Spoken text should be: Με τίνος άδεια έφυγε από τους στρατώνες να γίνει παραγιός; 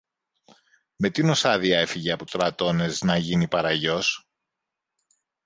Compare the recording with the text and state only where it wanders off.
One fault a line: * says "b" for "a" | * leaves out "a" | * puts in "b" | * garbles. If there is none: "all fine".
* leaves out "τους"